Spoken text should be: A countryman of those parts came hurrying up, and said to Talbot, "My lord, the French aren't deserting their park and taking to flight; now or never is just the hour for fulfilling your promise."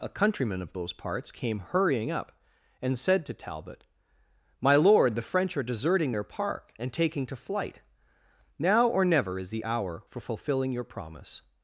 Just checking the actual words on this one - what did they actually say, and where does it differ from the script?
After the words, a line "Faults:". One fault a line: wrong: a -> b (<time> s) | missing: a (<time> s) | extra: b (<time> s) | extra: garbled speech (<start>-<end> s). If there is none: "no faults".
A countryman of those parts came hurrying up, and said to Talbot, "My lord, the French are deserting their park and taking to flight; now or never is the hour for fulfilling your promise."
Faults:
wrong: aren't -> are (5.5 s)
missing: just (9.5 s)